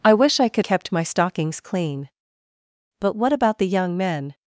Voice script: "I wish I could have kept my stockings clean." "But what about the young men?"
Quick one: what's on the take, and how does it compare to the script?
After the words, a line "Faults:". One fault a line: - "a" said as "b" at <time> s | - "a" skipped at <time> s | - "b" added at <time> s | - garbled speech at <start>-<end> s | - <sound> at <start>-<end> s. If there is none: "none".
"I wish I could kept my stockings clean." "But what about the young men?"
Faults:
- "have" skipped at 0.7 s